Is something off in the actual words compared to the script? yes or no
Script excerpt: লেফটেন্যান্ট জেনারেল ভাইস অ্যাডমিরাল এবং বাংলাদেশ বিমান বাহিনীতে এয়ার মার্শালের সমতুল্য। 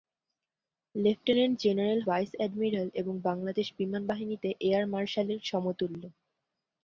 no